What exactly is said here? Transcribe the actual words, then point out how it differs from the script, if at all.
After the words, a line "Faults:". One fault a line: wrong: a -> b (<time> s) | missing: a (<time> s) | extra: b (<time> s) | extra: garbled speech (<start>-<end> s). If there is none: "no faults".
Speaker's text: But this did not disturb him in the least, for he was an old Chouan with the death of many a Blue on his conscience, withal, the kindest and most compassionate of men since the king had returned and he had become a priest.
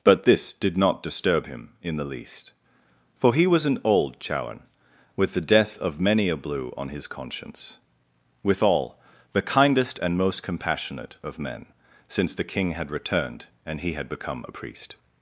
But this did not disturb him in the least, for he was an old Chouan with the death of many a Blue on his conscience, withal, the kindest and most compassionate of men since the king had returned and he had become a priest.
Faults:
no faults